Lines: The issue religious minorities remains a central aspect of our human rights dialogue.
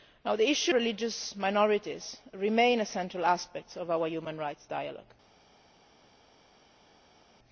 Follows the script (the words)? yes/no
yes